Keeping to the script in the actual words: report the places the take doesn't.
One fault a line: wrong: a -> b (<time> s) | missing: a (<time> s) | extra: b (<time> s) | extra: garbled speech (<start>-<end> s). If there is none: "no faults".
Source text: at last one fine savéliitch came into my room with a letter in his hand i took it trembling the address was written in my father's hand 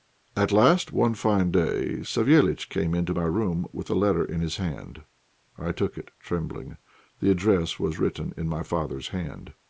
extra: day (1.5 s)